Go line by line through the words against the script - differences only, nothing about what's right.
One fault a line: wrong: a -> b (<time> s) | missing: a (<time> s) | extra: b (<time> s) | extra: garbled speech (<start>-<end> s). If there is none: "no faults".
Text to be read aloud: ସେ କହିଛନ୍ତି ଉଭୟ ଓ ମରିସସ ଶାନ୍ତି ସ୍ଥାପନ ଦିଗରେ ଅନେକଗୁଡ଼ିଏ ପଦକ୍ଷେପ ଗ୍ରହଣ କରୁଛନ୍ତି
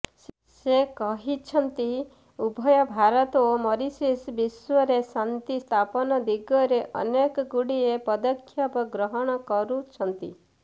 extra: ଭାରତ (2.9 s)
extra: ବିଶ୍ୱରେ (4.3 s)